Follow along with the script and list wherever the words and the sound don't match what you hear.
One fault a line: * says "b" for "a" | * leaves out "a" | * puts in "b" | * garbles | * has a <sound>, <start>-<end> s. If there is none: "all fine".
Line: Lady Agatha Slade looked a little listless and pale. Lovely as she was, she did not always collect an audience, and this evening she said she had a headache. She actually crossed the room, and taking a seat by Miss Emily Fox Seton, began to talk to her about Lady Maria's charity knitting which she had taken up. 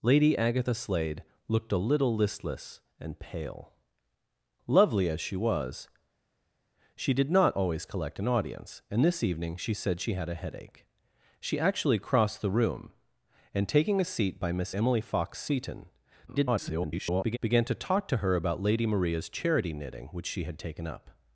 * garbles